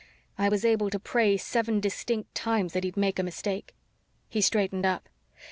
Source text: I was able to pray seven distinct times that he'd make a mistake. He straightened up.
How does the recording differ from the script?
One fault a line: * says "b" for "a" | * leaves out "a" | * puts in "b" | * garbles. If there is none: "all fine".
all fine